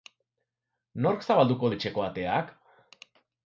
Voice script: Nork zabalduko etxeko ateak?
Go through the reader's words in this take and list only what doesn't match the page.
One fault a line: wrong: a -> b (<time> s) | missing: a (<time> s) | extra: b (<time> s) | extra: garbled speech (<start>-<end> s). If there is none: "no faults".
no faults